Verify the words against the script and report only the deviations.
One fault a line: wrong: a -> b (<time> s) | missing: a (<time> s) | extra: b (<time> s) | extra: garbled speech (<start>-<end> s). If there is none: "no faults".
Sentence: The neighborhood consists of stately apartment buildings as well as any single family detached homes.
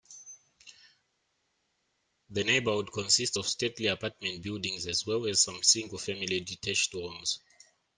wrong: any -> some (5.4 s)